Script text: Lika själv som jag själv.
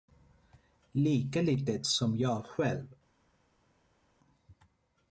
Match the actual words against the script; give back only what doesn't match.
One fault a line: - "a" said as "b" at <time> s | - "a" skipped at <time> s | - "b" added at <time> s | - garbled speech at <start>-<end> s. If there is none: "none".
- "själv" said as "litet" at 1.4 s